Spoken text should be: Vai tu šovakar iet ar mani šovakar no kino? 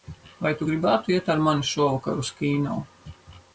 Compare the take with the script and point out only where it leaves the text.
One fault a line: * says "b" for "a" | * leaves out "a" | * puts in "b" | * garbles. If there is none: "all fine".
* says "gribētu" for "šovakar"
* says "uz" for "no"